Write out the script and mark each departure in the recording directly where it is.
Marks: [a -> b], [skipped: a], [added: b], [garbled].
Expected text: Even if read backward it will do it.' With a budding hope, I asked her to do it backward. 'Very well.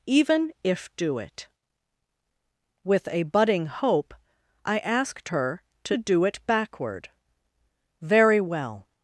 Even if [skipped: read backward it will] do it.' With a budding hope, I asked her to do it backward. 'Very well.